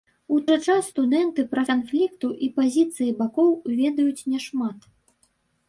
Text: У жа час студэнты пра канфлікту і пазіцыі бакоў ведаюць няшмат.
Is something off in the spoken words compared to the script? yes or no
no